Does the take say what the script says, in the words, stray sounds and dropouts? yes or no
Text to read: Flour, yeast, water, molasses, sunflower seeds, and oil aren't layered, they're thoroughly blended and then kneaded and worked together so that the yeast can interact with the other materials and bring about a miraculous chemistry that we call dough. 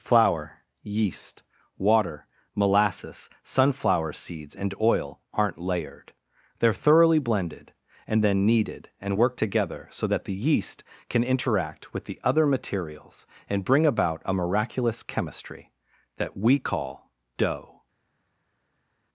yes